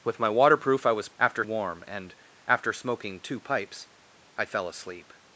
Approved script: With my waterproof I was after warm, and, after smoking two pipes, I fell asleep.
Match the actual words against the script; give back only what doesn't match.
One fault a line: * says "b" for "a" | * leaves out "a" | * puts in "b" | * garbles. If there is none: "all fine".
all fine